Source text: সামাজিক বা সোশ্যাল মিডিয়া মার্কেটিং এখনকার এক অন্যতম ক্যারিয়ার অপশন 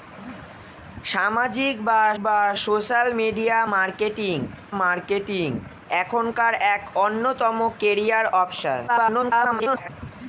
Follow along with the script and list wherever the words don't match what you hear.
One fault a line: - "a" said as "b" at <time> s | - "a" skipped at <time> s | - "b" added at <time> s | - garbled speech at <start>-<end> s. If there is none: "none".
- "বা" added at 2.2 s
- "মার্কেটিং" added at 4.8 s
- garbled speech at 8.9-9.9 s